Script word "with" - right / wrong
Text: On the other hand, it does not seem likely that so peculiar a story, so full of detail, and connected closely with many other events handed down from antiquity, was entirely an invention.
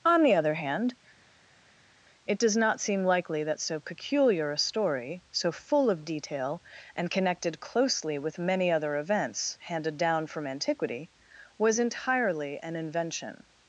right